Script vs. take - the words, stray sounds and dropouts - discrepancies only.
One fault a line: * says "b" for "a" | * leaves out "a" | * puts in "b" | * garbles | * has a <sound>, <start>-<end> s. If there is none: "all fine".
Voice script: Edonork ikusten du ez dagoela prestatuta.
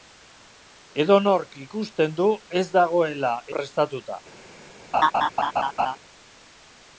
* has a laugh, 4.9-6.0 s